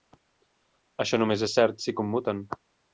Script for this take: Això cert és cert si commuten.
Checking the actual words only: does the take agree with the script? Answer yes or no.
no